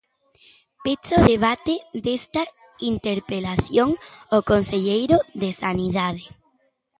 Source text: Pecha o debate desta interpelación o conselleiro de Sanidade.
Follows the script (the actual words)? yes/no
yes